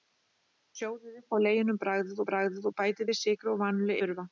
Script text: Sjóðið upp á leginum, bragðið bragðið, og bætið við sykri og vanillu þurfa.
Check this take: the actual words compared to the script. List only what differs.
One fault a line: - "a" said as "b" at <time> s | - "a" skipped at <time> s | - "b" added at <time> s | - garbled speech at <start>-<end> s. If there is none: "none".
none